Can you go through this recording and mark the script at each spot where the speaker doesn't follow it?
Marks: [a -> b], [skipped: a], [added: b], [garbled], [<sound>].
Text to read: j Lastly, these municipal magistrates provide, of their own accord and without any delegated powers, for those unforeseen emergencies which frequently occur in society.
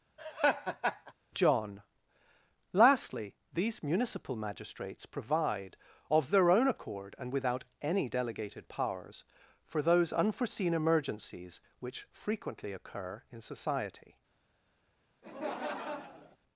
[laugh] [j -> john] Lastly, these municipal magistrates provide, of their own accord and without any delegated powers, for those unforeseen emergencies which frequently occur in society. [laugh]